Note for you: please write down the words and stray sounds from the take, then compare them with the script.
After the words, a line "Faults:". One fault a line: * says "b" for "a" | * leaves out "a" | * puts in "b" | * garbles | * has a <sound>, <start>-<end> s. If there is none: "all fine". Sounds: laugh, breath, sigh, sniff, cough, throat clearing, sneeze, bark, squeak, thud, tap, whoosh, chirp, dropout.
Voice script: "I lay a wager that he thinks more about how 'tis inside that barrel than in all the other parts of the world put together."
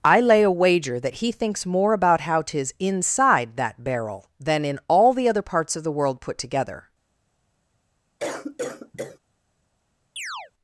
"I lay a wager that he thinks more about how 'tis inside that barrel than in all the other parts of the world put together."
Faults:
* has a cough, 8.2-9.2 s
* has a chirp, 10.2-10.5 s